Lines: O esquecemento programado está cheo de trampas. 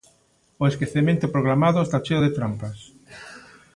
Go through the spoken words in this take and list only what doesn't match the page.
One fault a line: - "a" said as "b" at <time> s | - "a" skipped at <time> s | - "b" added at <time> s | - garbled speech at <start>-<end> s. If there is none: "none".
none